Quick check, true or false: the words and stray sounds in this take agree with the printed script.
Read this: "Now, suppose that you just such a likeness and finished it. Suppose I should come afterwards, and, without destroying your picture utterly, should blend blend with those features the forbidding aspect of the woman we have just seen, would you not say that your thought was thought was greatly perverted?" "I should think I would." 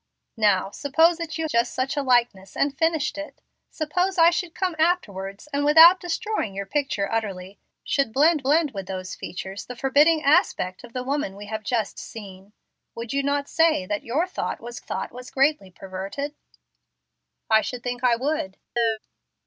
false